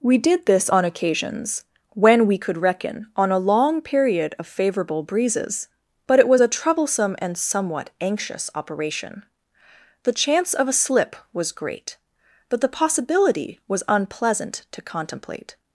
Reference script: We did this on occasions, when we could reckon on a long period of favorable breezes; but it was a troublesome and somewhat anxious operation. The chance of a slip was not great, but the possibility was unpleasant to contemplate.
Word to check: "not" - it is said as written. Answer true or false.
false